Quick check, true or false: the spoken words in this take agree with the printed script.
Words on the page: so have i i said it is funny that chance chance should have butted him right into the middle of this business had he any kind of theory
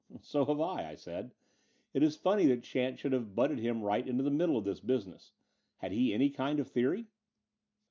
false